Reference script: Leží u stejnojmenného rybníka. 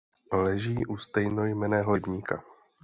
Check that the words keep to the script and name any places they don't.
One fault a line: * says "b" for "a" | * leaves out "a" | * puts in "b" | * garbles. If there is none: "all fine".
all fine